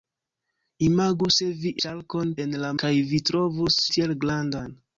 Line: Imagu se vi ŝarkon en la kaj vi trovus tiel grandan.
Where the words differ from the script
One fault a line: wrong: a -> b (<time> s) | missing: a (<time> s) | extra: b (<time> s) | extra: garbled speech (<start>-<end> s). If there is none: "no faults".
no faults